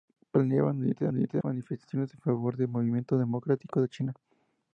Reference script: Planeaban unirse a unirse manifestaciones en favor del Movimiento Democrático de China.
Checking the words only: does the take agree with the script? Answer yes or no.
yes